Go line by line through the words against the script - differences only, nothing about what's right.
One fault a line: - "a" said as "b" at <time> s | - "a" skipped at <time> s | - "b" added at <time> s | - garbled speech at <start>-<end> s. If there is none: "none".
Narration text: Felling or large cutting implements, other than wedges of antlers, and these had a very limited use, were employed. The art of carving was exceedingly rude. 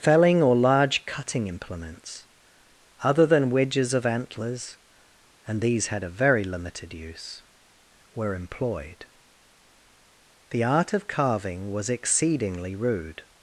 none